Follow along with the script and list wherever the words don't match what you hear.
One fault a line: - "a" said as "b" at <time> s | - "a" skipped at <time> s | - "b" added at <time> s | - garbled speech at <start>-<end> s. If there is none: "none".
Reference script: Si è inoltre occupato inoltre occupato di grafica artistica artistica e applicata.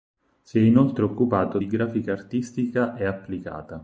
- "inoltre occupato" skipped at 1.6 s
- "artistica" skipped at 3.0 s